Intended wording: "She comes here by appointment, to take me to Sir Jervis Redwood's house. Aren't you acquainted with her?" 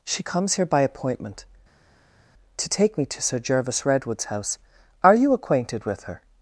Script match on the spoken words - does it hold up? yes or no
no